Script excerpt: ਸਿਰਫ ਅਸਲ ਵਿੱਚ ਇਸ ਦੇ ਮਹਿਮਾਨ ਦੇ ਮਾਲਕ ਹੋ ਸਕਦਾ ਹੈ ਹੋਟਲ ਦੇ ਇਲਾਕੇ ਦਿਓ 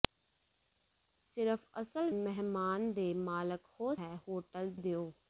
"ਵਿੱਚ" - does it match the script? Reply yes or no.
no